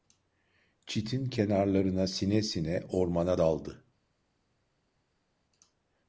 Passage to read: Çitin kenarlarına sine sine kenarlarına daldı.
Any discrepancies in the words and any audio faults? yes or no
yes